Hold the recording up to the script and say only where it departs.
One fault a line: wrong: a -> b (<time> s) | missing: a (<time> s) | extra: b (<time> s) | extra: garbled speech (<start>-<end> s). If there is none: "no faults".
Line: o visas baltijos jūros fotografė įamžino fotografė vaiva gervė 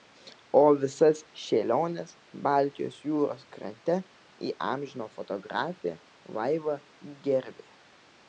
extra: šėliones (1.4 s)
wrong: fotografė -> krante (3.6 s)